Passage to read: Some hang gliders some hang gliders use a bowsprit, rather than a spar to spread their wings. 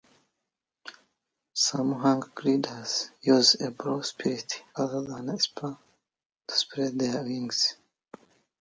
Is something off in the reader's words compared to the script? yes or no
yes